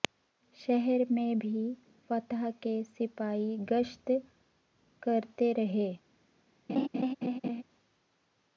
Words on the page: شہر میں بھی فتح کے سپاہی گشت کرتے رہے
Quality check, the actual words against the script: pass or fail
pass